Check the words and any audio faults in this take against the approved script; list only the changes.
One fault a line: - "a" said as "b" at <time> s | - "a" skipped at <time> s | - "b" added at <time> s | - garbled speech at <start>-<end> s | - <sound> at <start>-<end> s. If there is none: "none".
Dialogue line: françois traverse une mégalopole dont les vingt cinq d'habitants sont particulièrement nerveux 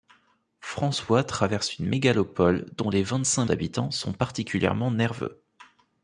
none